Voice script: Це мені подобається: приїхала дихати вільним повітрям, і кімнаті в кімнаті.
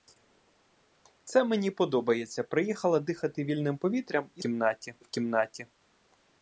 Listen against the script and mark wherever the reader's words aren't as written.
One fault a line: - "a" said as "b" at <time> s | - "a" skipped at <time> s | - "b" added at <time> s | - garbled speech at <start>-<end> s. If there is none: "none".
none